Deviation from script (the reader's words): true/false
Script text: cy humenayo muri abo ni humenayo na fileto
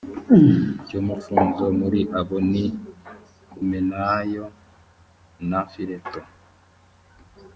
true